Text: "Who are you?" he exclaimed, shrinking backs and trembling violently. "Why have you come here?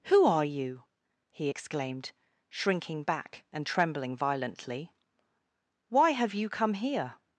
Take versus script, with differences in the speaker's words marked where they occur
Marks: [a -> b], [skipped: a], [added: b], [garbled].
"Who are you?" he exclaimed, shrinking [backs -> back] and trembling violently. "Why have you come here?